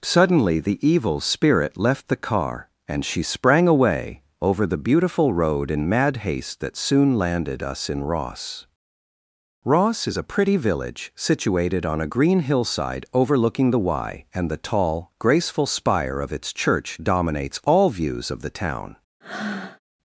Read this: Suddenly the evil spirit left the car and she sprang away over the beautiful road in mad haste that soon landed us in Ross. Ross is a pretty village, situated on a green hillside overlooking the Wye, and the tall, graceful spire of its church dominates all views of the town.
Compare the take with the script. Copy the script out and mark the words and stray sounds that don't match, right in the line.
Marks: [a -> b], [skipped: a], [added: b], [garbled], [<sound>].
Suddenly the evil spirit left the car and she sprang away over the beautiful road in mad haste that soon landed us in Ross. Ross is a pretty village, situated on a green hillside overlooking the Wye, and the tall, graceful spire of its church dominates all views of the town. [breath]